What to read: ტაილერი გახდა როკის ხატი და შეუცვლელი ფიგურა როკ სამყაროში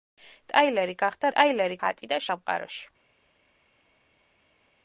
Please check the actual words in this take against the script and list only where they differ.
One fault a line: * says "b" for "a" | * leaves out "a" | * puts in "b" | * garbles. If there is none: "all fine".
* says "ტაილერი" for "როკის"
* leaves out "შეუცვლელი ფიგურა როკ"